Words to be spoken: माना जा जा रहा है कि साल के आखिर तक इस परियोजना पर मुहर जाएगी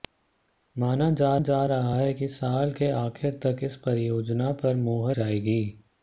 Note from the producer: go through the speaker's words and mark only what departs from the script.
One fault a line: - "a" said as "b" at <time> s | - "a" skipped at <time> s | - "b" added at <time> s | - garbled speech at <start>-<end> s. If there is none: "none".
none